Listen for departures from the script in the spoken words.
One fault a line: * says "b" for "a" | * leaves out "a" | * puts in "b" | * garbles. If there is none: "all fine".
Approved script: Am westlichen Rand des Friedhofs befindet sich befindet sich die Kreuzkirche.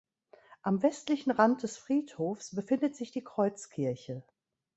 * leaves out "befindet sich"